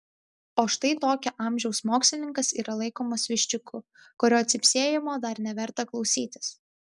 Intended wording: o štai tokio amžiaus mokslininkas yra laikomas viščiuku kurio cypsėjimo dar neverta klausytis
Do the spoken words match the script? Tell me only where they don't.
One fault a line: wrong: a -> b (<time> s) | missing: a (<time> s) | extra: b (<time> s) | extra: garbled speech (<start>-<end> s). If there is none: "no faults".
no faults